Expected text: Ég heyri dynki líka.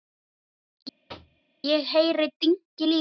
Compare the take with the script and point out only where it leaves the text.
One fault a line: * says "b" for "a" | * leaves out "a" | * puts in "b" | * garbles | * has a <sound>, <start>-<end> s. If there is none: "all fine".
* has a thud, 1.1-1.4 s